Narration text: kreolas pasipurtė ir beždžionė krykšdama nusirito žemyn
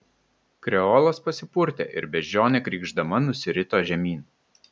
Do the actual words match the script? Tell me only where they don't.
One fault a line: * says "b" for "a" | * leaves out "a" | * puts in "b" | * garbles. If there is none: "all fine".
all fine